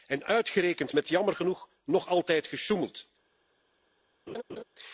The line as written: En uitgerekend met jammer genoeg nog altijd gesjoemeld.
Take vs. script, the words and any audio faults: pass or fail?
fail